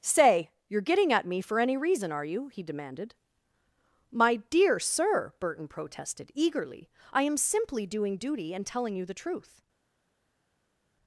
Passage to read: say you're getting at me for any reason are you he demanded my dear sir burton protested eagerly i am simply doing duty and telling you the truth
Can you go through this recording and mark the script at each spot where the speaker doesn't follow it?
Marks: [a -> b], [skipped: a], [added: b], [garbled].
say you're getting at me for any reason are you he demanded my dear sir burton protested eagerly i am simply doing duty and telling you the truth